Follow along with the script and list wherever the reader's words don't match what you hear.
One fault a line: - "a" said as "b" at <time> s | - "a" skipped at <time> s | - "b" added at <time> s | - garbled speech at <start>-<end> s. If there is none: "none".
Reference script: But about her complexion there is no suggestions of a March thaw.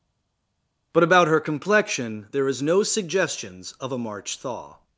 none